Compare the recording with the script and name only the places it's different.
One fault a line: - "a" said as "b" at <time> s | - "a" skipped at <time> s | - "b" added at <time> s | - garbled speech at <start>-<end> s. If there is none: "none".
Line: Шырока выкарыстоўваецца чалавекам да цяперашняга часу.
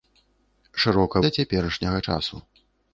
- "выкарыстоўваецца чалавекам" skipped at 1.2 s